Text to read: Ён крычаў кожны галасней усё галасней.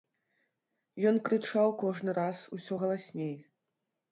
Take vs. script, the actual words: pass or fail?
fail